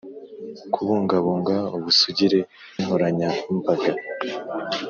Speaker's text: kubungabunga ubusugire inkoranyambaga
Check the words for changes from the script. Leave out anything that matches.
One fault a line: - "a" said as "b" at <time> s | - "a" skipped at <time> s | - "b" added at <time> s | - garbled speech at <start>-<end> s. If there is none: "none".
none